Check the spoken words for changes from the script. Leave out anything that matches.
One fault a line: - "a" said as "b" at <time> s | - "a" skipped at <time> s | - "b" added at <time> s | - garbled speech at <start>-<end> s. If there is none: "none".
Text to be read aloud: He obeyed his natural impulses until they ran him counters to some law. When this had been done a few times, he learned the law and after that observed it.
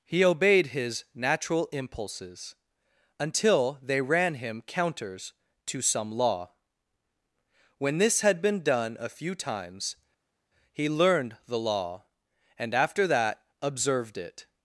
none